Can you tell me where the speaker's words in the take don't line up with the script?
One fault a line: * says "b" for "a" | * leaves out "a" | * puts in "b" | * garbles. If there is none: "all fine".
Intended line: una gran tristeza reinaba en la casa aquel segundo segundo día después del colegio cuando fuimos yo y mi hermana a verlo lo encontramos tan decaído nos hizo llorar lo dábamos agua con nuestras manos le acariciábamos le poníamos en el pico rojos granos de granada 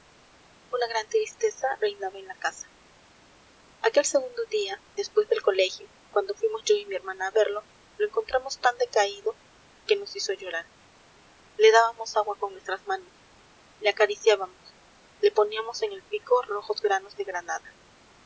* leaves out "segundo"
* puts in "que"
* says "le" for "lo"